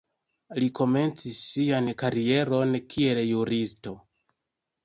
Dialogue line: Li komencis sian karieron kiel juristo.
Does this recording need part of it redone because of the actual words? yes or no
no